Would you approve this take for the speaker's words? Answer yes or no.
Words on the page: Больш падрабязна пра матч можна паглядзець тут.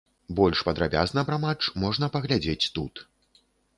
yes